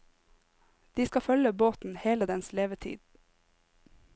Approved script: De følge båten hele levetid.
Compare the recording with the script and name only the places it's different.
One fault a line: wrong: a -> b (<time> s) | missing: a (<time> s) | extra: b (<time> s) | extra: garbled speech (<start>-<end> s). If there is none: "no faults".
extra: skal (1.0 s)
extra: dens (2.2 s)